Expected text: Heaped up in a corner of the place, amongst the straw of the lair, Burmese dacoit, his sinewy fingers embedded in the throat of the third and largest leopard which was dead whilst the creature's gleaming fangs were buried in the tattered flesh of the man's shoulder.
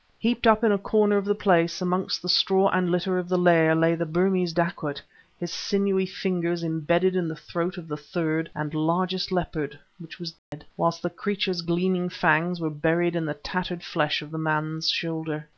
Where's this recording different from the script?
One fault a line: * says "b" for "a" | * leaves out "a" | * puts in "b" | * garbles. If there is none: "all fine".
* puts in "and litter"
* puts in "lay the"